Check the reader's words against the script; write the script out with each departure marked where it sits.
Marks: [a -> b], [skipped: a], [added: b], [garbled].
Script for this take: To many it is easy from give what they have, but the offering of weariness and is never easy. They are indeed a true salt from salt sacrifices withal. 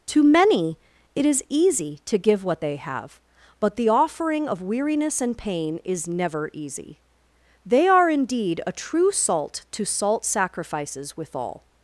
To many it is easy [from -> to] give what they have, but the offering of weariness and [added: pain] is never easy. They are indeed a true salt [from -> to] salt sacrifices withal.